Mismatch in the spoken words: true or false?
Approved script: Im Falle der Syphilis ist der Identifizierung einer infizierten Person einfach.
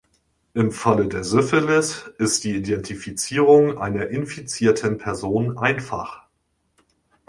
true